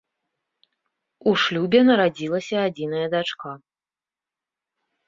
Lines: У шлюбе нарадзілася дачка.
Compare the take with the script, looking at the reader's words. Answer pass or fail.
fail